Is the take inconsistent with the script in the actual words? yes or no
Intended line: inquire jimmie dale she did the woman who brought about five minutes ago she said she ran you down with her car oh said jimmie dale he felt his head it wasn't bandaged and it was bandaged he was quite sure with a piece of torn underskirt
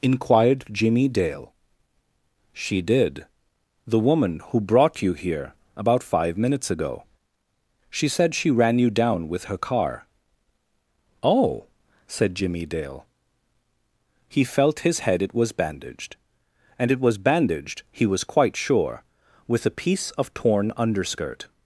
yes